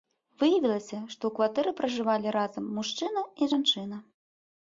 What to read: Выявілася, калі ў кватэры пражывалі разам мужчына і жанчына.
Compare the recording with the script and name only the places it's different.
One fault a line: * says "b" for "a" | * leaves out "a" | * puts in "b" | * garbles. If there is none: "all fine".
* says "што" for "калі"